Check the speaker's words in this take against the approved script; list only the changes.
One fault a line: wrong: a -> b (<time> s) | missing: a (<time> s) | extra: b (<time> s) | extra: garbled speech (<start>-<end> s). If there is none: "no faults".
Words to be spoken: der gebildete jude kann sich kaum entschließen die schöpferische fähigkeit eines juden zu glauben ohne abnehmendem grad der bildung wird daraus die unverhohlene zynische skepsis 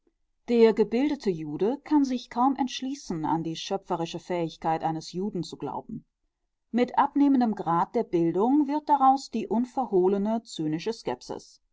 extra: an (3.2 s)
wrong: ohne -> mit (6.7 s)